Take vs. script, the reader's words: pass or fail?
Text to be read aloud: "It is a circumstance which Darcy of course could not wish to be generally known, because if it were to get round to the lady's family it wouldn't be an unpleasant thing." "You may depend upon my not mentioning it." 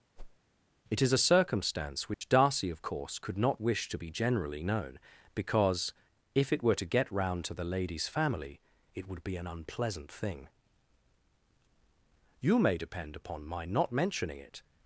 fail